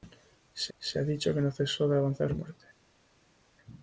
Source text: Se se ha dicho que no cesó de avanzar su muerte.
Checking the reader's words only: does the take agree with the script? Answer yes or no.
yes